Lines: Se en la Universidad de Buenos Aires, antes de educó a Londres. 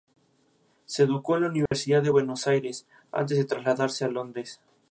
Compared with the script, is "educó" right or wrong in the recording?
wrong